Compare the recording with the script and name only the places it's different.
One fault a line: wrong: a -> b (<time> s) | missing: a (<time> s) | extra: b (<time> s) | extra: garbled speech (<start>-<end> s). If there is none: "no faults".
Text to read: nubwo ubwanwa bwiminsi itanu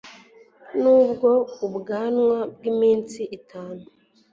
no faults